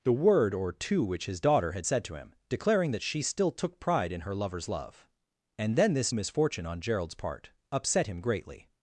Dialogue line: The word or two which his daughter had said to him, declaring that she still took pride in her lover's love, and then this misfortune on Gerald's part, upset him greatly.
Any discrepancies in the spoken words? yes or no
no